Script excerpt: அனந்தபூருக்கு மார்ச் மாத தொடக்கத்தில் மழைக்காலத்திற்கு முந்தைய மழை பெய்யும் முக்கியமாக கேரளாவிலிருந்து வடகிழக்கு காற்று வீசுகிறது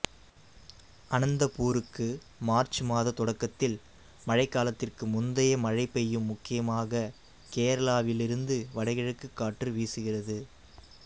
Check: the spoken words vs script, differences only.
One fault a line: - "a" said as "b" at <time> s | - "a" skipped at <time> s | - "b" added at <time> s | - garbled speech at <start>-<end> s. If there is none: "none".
none